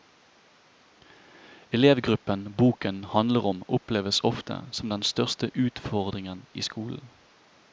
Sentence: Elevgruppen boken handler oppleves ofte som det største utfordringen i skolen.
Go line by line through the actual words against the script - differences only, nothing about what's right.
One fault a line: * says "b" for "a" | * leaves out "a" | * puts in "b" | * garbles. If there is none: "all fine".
* puts in "om"
* says "den" for "det"